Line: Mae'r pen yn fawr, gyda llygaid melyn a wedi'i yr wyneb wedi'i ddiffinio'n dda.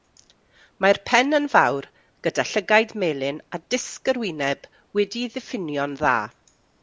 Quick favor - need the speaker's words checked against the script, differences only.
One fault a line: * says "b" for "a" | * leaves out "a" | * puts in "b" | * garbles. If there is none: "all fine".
* says "disg" for "wedi'i"